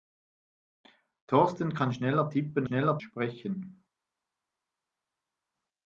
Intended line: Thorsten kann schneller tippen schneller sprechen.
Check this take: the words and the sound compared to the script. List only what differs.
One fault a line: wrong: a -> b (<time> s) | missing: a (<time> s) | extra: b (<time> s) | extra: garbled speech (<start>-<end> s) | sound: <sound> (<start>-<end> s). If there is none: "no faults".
no faults